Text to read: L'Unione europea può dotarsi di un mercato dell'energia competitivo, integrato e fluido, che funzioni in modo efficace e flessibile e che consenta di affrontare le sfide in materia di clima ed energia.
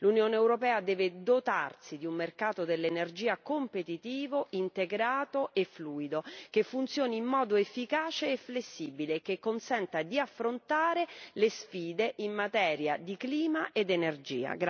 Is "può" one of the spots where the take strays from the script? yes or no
yes